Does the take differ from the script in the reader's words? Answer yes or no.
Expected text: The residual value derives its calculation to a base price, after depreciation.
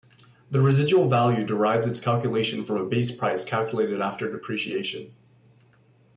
yes